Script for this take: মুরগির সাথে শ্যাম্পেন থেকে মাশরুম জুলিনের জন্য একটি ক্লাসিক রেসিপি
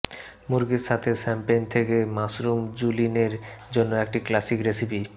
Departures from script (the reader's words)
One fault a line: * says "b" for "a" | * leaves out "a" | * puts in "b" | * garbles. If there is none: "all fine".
all fine